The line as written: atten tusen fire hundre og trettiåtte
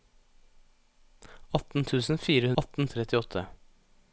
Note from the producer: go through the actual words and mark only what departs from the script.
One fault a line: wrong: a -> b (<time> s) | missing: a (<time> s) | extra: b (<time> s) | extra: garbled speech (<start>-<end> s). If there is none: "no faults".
wrong: hundre -> atten (2.6 s)